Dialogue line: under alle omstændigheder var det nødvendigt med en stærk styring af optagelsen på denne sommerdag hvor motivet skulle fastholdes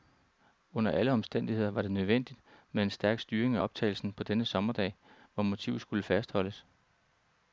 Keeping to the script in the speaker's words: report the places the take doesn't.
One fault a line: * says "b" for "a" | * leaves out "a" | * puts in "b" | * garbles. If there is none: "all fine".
all fine